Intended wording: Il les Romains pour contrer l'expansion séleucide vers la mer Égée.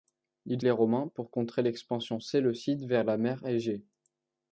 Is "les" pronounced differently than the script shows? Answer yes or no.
no